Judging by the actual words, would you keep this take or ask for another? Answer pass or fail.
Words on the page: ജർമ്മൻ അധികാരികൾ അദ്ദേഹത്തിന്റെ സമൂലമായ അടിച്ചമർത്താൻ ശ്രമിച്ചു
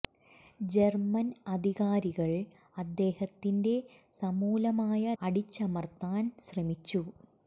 pass